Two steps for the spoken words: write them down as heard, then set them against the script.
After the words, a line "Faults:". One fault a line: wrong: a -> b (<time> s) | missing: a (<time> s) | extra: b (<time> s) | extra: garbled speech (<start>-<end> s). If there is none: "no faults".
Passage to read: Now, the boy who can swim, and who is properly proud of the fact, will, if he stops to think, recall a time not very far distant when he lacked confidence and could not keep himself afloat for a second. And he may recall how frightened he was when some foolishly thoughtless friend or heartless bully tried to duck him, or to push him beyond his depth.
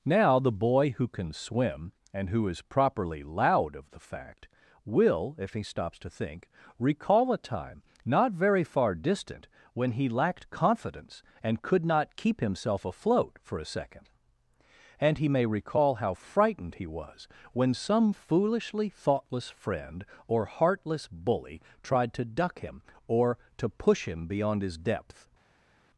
Now, the boy who can swim, and who is properly loud of the fact, will, if he stops to think, recall a time not very far distant when he lacked confidence and could not keep himself afloat for a second. And he may recall how frightened he was when some foolishly thoughtless friend or heartless bully tried to duck him, or to push him beyond his depth.
Faults:
wrong: proud -> loud (3.2 s)